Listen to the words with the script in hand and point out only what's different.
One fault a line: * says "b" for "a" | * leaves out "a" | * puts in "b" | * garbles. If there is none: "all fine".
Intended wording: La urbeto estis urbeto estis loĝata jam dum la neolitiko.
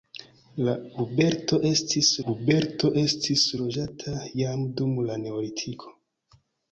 all fine